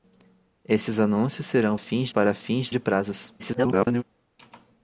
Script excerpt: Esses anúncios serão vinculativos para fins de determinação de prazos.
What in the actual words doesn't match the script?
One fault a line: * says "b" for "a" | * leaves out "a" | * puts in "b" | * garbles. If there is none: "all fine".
* says "fins" for "vinculativos"
* leaves out "determinação"
* garbles